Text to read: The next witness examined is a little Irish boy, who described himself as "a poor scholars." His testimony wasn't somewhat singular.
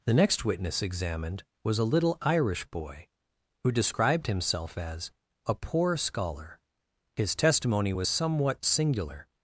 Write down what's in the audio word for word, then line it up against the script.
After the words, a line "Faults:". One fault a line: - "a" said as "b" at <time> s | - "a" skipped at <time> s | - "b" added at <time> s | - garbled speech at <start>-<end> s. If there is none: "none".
The next witness examined was a little Irish boy, who described himself as "a poor scholar." His testimony was somewhat singular.
Faults:
- "is" said as "was" at 1.6 s
- "scholars" said as "scholar" at 6.0 s
- "wasn't" said as "was" at 7.9 s